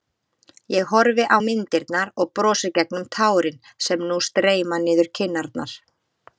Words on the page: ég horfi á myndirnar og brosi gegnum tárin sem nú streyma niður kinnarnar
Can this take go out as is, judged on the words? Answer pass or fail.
pass